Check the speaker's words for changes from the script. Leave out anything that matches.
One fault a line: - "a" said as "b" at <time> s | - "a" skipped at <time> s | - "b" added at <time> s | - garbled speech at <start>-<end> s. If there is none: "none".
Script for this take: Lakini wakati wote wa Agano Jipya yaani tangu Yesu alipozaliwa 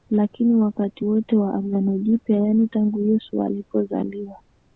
none